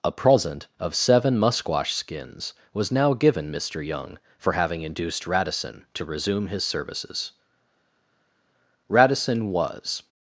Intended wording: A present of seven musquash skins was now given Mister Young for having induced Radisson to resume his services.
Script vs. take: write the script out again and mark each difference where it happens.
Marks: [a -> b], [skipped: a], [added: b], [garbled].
A present of seven musquash skins was now given Mister Young for having induced Radisson to resume his services. [added: Radisson was]